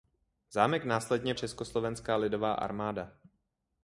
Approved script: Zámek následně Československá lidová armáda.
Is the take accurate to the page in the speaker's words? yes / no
yes